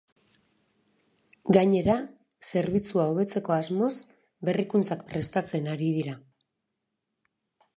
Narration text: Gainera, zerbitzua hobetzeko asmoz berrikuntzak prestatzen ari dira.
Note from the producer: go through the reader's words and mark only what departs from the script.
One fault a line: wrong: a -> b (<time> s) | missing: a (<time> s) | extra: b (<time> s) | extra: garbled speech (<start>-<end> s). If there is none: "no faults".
no faults